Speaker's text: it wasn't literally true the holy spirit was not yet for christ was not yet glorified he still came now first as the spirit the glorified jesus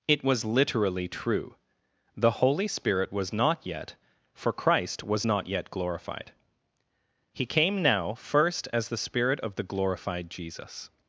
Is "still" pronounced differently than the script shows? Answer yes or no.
yes